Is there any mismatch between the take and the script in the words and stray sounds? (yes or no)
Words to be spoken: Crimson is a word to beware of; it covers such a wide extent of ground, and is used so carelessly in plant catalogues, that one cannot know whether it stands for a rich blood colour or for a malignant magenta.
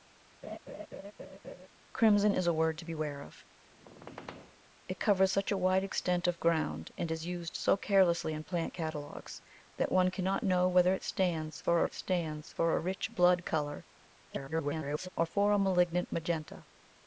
yes